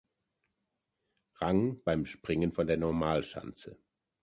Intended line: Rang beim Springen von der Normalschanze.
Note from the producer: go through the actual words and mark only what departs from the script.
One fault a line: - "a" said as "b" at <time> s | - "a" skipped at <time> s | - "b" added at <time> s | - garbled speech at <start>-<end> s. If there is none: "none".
none